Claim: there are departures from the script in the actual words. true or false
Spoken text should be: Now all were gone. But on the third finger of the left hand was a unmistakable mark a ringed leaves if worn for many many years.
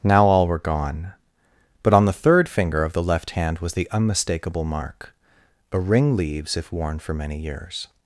true